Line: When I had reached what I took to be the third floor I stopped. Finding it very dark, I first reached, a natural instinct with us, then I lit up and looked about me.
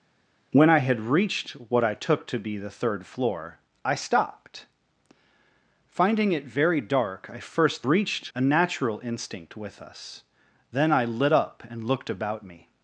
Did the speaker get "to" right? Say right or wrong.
right